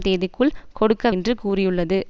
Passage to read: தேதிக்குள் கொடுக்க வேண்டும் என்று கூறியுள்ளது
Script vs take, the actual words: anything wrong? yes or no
yes